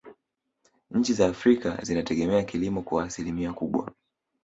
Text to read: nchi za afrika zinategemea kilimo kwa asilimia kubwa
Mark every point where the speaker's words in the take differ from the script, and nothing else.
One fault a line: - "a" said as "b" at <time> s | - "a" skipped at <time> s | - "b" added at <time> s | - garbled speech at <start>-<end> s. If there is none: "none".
none